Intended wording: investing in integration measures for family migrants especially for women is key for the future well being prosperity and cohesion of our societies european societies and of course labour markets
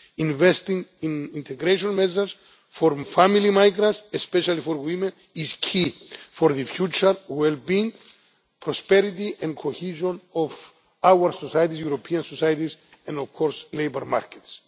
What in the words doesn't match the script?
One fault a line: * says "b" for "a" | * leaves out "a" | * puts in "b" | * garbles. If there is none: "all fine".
all fine